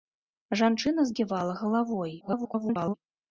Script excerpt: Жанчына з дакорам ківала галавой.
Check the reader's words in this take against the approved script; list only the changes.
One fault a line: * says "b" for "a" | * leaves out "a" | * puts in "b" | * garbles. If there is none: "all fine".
* leaves out "дакорам"
* garbles